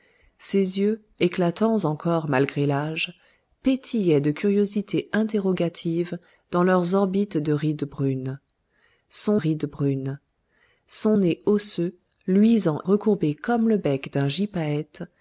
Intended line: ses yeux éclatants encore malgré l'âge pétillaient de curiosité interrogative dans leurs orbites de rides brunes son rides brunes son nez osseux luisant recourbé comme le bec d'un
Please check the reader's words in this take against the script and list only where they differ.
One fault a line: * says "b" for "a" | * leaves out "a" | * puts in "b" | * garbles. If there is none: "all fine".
all fine